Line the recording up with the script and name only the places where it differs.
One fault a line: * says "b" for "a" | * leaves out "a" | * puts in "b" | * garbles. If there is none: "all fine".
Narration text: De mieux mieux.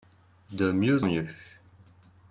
all fine